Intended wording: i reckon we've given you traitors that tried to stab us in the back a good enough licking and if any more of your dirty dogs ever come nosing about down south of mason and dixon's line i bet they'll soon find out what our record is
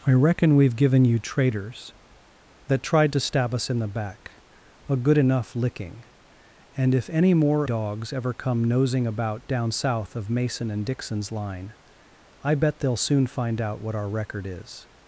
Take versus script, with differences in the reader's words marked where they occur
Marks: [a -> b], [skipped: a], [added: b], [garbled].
i reckon we've given you traitors that tried to stab us in the back a good enough licking and if any more [skipped: of your dirty] dogs ever come nosing about down south of mason and dixon's line i bet they'll soon find out what our record is